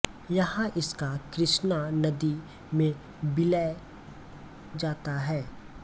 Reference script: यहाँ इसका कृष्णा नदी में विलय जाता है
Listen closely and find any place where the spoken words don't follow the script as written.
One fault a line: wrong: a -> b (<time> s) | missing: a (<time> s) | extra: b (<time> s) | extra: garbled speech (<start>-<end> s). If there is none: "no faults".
no faults